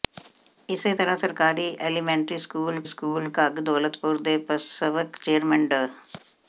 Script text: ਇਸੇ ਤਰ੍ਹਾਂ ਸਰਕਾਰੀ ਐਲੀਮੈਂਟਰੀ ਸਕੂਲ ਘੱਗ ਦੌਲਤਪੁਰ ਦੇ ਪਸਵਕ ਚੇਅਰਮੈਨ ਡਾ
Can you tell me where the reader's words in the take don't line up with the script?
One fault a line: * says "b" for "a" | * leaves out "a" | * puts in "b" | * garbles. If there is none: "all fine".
* puts in "ਸਕੂਲ"